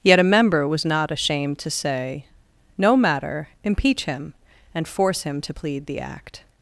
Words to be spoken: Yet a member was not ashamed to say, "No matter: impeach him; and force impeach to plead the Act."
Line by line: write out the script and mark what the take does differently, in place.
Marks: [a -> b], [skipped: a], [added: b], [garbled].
Yet a member was not ashamed to say, "No matter: impeach him; and force [impeach -> him] to plead the Act."